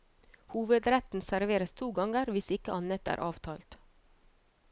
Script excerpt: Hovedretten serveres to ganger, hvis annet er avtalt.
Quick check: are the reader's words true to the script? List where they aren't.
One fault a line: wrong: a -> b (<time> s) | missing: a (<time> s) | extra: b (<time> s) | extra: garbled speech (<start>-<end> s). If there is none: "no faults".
extra: ikke (2.6 s)